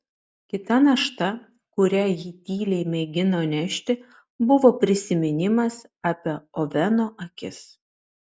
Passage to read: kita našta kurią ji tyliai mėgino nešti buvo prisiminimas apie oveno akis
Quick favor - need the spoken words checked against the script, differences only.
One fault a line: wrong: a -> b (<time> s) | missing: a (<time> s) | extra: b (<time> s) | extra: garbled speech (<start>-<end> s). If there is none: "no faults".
no faults